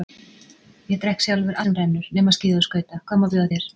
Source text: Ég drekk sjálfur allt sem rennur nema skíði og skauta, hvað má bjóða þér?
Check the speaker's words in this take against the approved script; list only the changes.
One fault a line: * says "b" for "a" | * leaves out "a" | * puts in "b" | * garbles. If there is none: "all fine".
* leaves out "allt"